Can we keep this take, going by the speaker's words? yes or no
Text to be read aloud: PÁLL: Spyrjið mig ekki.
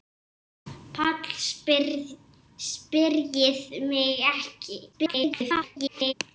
no